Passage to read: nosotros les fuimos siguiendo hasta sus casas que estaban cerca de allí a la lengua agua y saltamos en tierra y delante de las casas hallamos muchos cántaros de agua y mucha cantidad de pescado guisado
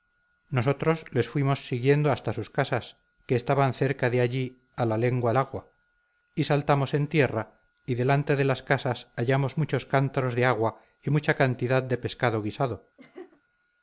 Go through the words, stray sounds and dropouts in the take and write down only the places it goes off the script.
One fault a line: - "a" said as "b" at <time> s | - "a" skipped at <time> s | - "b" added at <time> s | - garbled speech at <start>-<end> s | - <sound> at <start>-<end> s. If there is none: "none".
- laugh at 13.0-13.4 s